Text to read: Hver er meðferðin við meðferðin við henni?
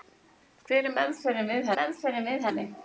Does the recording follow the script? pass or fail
pass